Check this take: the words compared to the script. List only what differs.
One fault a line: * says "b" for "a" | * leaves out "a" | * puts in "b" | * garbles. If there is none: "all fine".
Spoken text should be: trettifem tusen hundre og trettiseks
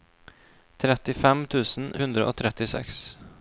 all fine